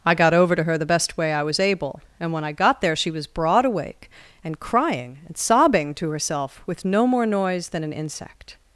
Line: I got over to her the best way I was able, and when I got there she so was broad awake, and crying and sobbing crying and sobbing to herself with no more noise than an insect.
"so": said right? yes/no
no